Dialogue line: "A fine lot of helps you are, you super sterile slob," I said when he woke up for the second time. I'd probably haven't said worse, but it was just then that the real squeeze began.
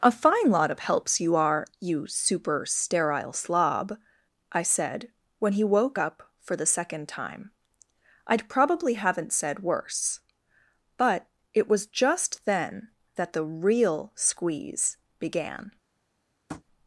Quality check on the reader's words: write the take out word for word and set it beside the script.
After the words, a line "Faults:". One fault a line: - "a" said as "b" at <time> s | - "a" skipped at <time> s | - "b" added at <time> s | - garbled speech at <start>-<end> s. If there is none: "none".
"A fine lot of helps you are, you super sterile slob," I said when he woke up for the second time. I'd probably haven't said worse, but it was just then that the real squeeze began.
Faults:
none